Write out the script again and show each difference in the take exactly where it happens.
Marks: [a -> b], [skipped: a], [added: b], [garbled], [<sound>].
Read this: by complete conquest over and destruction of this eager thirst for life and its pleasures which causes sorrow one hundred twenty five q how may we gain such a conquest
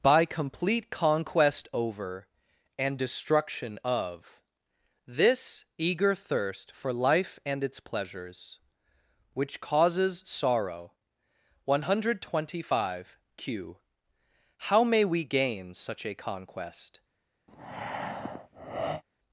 by complete conquest over and destruction of this eager thirst for life and its pleasures which causes sorrow one hundred twenty five q how may we gain such a conquest [breath]